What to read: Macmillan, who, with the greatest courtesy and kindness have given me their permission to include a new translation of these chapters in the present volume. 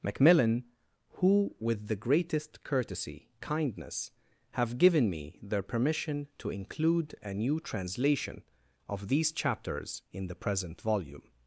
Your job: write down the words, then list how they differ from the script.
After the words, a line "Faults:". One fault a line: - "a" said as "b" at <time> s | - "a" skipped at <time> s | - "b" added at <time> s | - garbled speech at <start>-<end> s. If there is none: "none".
Macmillan, who, with the greatest courtesy kindness have given me their permission to include a new translation of these chapters in the present volume.
Faults:
- "and" skipped at 3.3 s